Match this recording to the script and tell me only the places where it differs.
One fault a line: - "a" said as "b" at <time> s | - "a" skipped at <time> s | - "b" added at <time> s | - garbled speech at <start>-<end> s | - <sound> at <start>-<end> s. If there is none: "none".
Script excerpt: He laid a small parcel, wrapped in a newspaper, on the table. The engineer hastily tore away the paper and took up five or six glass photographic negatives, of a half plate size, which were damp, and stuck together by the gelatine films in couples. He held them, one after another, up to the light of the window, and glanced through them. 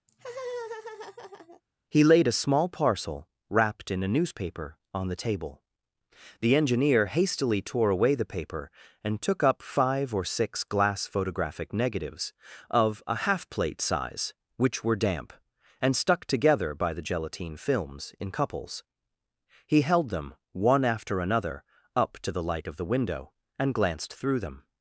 - laugh at 0.1-1.6 s